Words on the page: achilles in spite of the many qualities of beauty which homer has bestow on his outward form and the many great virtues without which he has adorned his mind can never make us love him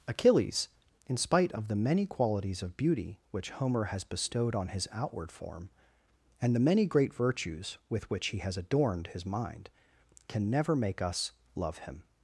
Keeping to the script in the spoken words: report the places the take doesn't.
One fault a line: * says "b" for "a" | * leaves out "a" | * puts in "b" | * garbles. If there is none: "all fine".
* says "bestowed" for "bestow"
* says "with" for "without"